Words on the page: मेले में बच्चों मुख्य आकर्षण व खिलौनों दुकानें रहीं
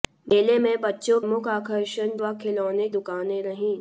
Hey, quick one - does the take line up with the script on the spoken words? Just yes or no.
yes